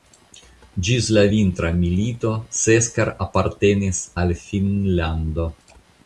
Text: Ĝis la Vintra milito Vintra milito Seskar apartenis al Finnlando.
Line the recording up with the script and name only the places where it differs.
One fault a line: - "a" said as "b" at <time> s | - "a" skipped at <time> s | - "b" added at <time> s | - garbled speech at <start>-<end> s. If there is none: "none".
- "Vintra milito" skipped at 2.3 s